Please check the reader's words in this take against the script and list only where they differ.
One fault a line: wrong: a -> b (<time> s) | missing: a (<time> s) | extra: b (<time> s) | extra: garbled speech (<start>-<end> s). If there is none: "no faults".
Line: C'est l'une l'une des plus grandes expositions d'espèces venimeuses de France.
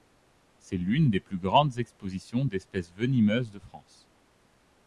missing: l'une (1.1 s)